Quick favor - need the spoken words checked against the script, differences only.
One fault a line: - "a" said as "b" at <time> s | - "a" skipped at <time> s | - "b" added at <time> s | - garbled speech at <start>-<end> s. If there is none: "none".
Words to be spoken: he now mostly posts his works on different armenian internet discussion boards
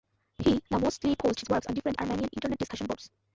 none